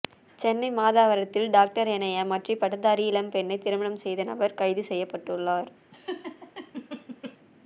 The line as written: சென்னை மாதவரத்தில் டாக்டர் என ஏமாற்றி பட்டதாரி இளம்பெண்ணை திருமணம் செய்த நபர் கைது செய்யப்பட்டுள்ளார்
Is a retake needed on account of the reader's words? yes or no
no